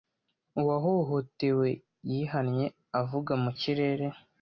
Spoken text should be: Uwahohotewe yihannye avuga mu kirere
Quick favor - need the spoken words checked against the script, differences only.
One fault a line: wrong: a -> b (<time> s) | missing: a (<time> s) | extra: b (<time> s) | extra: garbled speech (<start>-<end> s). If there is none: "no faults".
no faults